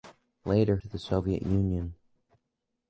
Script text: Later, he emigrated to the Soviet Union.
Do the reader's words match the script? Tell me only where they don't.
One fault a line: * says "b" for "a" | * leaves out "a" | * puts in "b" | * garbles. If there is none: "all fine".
* leaves out "he emigrated"